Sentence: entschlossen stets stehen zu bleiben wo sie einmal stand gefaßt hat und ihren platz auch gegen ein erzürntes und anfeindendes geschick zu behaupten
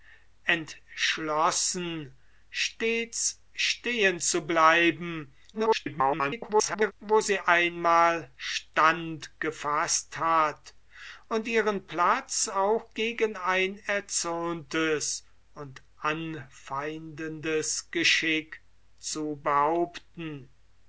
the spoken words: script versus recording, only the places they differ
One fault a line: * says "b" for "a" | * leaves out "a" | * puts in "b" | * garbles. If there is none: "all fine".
* garbles